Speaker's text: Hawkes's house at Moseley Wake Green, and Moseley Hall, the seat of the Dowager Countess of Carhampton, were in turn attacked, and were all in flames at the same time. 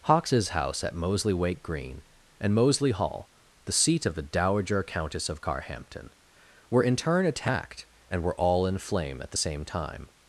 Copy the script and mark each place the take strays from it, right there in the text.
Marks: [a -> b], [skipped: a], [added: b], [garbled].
Hawkes's house at Moseley Wake Green, and Moseley Hall, the seat of the Dowager Countess of Carhampton, were in turn attacked, and were all in [flames -> flame] at the same time.